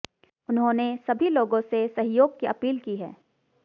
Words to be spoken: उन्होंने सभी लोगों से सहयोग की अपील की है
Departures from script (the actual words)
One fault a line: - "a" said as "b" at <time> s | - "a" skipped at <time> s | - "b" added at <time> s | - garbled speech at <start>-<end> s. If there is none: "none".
none